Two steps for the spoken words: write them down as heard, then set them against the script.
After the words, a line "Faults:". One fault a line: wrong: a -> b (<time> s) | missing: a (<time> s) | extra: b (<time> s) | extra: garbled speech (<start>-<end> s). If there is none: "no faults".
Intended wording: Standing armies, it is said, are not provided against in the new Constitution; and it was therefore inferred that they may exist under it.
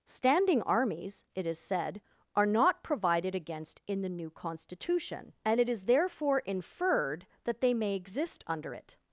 Standing armies, it is said, are not provided against in the new Constitution; and it is therefore inferred that they may exist under it.
Faults:
wrong: was -> is (5.7 s)